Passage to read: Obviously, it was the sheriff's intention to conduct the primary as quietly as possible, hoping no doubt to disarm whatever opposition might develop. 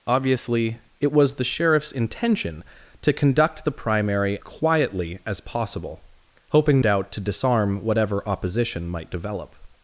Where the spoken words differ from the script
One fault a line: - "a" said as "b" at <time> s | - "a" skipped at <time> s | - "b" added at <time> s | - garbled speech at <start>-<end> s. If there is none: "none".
- "as" skipped at 4.4 s
- "no" skipped at 6.8 s